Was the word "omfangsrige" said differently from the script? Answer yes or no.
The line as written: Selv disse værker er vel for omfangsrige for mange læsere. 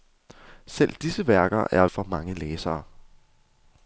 yes